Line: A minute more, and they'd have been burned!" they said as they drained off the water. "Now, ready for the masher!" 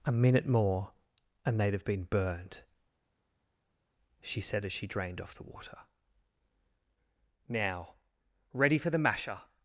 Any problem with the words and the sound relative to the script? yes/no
yes